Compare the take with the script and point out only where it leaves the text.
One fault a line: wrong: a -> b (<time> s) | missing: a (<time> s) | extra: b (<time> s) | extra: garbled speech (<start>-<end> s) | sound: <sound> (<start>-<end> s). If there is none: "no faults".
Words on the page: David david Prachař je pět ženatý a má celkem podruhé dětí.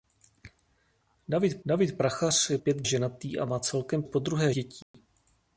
sound: dropout (4.8-4.9 s)